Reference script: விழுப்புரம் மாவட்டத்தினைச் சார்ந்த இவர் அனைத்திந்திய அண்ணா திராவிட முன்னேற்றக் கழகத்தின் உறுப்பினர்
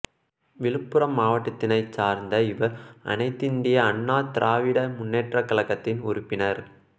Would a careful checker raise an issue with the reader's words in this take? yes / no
no